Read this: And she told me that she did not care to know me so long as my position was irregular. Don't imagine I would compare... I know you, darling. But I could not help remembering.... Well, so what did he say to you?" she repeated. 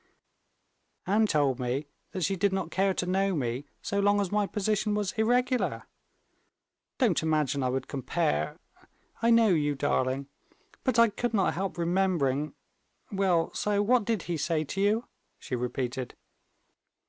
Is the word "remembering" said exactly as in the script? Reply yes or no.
yes